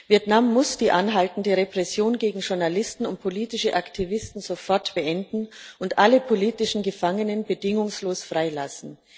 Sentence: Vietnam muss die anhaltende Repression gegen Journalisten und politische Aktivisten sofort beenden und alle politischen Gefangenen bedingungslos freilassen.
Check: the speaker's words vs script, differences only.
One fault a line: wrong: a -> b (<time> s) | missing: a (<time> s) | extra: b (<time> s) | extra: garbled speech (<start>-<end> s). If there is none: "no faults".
no faults